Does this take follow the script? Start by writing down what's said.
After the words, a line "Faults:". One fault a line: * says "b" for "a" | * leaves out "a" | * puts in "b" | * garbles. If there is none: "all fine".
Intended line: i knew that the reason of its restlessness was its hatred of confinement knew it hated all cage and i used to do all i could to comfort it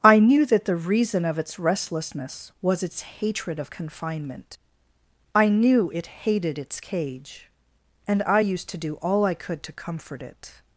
i knew that the reason of its restlessness was its hatred of confinement i knew it hated its cage and i used to do all i could to comfort it
Faults:
* puts in "i"
* says "its" for "all"